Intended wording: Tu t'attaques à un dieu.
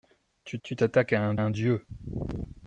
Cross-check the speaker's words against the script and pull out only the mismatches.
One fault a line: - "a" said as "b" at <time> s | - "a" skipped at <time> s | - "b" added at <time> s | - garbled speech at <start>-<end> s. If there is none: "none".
- "tu" added at 0.6 s
- "un" added at 1.4 s